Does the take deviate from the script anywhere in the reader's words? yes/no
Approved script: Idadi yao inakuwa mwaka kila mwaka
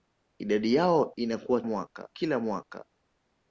no